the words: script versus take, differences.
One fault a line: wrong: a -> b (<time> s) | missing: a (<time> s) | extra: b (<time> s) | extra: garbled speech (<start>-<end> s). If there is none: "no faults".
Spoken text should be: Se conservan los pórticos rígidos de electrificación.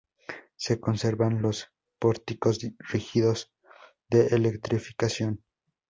no faults